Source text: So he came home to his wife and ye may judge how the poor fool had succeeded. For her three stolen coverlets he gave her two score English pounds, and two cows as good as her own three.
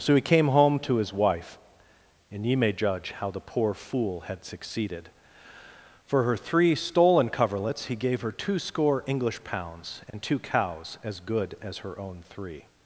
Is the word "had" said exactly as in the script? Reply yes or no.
yes